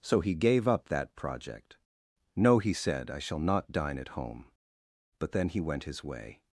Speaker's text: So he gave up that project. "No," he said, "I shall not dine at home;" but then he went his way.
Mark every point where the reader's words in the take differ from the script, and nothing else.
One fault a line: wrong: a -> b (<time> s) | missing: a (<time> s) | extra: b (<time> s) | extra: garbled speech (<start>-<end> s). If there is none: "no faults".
no faults